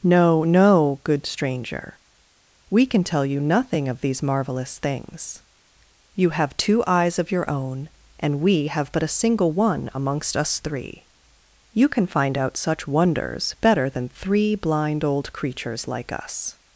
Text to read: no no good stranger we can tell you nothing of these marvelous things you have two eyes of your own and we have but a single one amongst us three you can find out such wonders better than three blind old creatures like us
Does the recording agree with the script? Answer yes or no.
yes